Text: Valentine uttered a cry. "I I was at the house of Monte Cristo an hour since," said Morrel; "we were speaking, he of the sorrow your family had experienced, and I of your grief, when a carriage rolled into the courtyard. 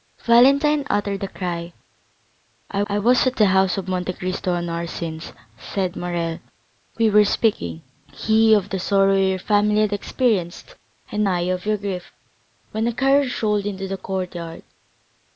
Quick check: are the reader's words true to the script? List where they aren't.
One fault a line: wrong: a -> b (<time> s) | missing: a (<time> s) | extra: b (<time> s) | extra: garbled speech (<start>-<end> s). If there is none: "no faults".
no faults